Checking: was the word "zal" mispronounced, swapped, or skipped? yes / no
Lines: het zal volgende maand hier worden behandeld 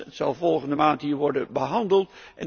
no